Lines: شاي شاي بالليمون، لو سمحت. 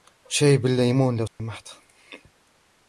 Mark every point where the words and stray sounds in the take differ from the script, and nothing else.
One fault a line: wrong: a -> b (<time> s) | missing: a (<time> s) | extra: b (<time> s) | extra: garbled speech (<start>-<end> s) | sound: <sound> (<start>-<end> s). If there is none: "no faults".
missing: شاي (0.6 s)
sound: dropout (1.3-1.4 s)